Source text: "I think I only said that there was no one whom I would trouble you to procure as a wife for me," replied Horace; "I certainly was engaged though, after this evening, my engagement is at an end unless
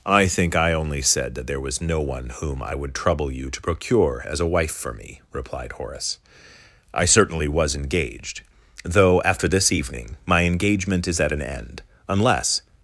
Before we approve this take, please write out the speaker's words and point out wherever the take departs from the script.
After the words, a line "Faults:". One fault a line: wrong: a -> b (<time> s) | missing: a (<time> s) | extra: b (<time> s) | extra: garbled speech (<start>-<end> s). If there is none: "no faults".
"I think I only said that there was no one whom I would trouble you to procure as a wife for me," replied Horace; "I certainly was engaged though, after this evening, my engagement is at an end unless
Faults:
no faults